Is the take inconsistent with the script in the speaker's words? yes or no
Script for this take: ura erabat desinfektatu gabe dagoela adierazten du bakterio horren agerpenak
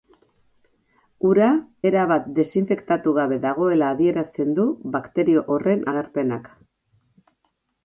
no